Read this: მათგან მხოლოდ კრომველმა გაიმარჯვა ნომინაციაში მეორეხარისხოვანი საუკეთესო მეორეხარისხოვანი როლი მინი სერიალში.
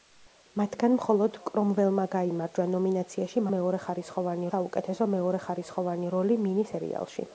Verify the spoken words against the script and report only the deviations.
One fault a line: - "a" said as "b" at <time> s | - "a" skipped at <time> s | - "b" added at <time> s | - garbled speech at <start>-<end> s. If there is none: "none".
none